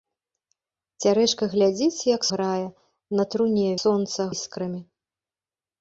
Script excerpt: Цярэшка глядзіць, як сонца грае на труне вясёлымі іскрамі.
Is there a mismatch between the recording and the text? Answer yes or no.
yes